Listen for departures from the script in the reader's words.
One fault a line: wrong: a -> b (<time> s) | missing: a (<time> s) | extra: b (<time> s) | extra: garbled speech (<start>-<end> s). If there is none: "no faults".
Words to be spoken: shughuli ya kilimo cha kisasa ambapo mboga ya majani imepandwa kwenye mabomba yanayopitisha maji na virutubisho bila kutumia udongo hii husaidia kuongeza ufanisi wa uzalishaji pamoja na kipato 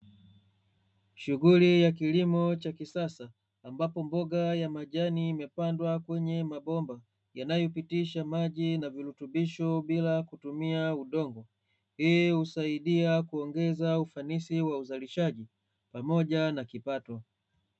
no faults